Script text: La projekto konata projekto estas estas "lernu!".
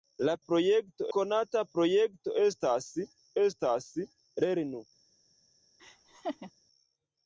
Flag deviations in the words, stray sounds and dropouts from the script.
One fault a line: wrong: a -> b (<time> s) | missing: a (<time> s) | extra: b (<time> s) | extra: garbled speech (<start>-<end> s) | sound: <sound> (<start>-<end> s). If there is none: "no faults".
sound: laugh (5.8-6.5 s)